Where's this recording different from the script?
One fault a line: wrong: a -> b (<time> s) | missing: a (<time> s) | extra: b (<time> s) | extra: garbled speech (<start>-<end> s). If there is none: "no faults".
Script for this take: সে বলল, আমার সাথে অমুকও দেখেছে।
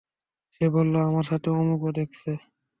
no faults